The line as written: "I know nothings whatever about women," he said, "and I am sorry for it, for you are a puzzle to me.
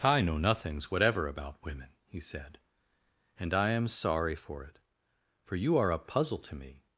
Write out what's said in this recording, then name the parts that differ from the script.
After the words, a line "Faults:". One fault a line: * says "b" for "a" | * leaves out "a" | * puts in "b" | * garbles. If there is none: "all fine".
"I know nothings whatever about women," he said, "and I am sorry for it, for you are a puzzle to me.
Faults:
all fine